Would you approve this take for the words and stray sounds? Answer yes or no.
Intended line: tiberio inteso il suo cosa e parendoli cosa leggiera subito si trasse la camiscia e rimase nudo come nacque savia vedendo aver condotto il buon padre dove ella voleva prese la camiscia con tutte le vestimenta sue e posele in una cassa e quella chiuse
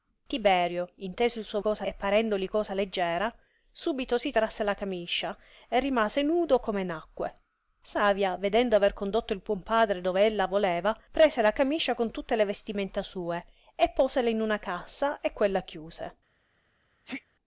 no